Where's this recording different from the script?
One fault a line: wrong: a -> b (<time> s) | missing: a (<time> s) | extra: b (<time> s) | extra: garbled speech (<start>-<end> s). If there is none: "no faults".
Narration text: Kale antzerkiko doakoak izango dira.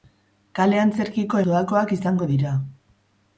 no faults